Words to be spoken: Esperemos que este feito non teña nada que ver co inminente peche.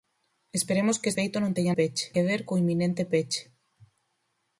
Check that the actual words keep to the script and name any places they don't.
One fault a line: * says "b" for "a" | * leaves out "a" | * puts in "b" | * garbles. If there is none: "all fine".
* leaves out "este"
* says "peche" for "nada"